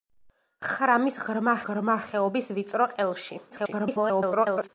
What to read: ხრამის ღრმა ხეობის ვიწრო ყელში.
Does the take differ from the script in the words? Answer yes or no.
yes